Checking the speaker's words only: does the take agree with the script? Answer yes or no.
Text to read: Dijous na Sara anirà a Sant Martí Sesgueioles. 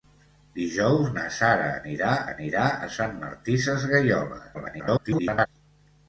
no